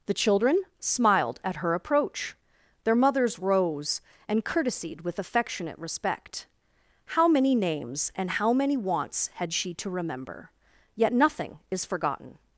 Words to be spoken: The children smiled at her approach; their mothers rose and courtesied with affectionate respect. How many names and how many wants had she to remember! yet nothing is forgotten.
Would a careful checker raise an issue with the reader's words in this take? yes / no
no